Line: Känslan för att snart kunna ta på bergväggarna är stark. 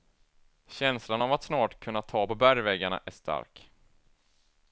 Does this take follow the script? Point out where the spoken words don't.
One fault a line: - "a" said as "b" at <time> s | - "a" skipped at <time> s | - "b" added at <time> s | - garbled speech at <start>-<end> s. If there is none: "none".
- "för" said as "av" at 1.2 s